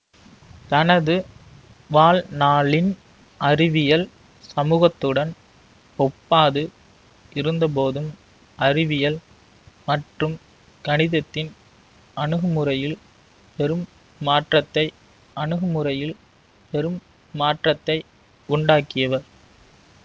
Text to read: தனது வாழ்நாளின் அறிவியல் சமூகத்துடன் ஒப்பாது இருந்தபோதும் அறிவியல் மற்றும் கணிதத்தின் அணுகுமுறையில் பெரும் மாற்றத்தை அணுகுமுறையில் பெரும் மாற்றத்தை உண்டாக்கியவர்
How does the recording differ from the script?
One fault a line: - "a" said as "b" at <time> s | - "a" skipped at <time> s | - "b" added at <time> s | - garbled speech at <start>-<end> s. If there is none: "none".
none